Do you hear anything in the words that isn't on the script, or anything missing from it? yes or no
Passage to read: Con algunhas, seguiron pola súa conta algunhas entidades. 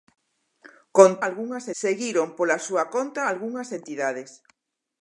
no